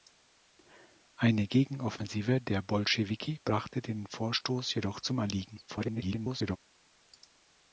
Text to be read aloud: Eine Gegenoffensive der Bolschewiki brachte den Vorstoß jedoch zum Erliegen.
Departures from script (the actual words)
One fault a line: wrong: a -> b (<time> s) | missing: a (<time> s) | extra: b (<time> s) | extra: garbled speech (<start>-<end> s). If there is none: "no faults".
extra: garbled speech (5.7-6.6 s)